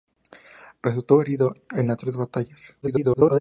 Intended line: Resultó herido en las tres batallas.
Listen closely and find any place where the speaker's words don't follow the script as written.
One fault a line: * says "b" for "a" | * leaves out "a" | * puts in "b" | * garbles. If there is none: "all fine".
* garbles